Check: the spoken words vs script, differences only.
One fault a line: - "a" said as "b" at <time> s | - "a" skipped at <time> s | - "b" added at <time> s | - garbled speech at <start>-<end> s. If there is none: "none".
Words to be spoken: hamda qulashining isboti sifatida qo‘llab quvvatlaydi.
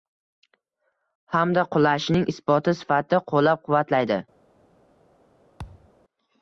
none